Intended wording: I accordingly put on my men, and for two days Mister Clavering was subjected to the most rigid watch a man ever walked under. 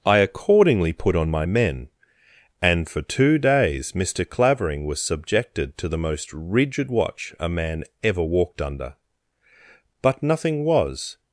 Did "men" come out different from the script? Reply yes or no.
no